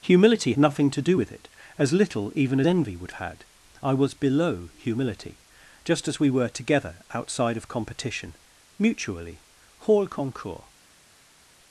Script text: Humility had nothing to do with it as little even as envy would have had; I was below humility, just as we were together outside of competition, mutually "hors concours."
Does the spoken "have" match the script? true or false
false